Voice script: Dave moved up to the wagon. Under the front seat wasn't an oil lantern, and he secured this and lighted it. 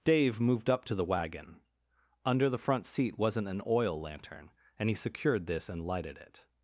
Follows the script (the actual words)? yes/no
yes